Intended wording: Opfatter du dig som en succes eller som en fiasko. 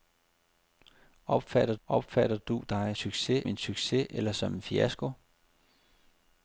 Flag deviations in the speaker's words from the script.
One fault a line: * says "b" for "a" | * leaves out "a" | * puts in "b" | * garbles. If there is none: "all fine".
* puts in "opfatter"
* says "succes" for "som"